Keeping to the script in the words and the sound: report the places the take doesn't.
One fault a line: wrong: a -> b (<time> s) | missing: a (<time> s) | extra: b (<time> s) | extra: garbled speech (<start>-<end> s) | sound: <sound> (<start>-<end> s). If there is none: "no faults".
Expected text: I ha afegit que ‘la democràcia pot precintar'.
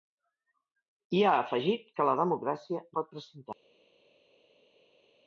no faults